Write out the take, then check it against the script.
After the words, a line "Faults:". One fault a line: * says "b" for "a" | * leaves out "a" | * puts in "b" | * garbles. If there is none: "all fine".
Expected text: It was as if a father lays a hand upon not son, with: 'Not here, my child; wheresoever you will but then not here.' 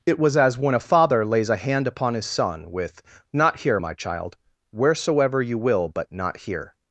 It was as when a father lays a hand upon his son, with: 'Not here, my child; wheresoever you will but not here.'
Faults:
* says "when" for "if"
* says "his" for "not"
* leaves out "then"